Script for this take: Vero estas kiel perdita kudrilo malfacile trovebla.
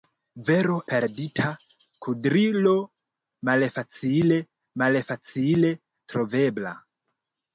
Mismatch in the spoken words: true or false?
true